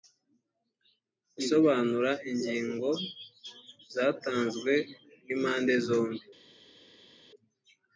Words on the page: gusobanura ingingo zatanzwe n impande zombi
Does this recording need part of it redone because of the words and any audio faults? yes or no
no